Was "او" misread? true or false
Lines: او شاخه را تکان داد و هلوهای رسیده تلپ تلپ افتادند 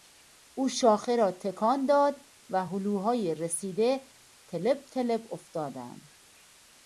false